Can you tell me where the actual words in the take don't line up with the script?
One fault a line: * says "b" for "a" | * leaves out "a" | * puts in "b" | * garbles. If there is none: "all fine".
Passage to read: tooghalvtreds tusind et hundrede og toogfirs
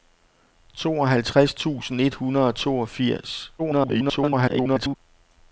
* garbles